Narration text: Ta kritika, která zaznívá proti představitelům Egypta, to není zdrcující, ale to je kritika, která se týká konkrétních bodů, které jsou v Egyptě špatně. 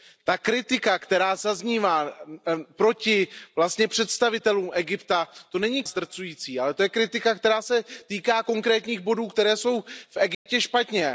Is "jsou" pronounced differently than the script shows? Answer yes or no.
no